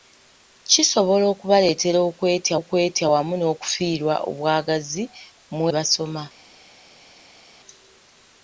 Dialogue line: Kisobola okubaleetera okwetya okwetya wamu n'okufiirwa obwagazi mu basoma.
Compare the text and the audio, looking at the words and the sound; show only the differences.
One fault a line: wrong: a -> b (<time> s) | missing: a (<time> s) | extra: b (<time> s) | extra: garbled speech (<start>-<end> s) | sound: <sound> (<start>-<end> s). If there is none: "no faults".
no faults